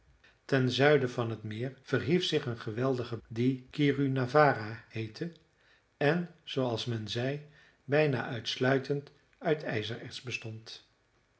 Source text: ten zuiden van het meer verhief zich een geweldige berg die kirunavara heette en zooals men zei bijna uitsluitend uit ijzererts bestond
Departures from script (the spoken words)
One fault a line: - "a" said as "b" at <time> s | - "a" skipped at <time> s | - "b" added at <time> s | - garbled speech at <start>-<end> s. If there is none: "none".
- "berg" skipped at 3.2 s